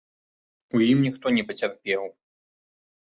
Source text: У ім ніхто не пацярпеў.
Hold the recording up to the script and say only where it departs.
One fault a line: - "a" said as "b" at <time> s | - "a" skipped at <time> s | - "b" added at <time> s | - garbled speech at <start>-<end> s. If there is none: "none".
none